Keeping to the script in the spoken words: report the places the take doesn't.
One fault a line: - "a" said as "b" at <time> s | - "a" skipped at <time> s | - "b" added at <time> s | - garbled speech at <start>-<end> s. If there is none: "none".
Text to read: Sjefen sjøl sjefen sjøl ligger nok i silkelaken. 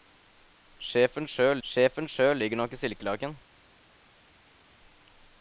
none